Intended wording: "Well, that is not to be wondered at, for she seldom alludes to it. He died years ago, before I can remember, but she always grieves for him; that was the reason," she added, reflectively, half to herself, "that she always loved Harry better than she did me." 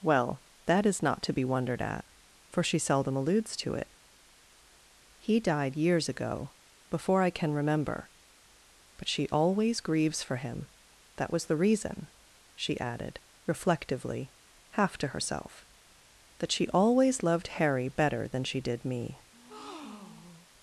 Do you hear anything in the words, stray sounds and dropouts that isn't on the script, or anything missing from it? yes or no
yes